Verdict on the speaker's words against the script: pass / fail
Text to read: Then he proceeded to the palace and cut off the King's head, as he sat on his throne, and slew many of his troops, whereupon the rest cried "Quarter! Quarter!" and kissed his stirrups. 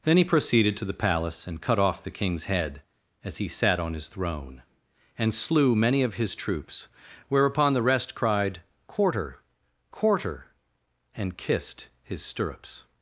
pass